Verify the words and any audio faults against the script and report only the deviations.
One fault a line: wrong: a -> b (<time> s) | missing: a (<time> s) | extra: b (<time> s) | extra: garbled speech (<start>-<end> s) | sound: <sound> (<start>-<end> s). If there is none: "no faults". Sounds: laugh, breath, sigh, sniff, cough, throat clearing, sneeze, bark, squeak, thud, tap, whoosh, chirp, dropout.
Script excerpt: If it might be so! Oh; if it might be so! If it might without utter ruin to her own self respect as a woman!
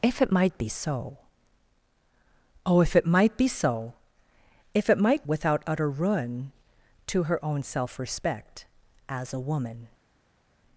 no faults